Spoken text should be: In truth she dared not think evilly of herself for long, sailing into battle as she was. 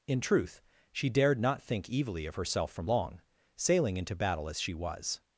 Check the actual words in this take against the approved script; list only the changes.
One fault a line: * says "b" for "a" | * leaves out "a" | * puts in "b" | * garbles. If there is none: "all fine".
* says "from" for "for"